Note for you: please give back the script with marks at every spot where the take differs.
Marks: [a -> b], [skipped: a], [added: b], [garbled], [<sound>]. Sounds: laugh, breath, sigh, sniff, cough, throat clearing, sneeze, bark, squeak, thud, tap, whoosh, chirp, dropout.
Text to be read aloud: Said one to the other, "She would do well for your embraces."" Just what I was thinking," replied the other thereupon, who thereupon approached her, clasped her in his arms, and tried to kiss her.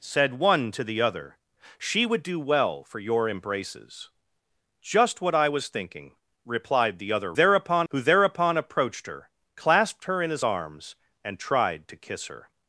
Said one to the other, "She would do well for your embraces."" Just what I was thinking," replied the other thereupon, who thereupon approached her, clasped her in his arms, and tried to kiss her.